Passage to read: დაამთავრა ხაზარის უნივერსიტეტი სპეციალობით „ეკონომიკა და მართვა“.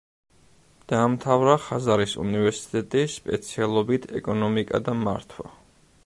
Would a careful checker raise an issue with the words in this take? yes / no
no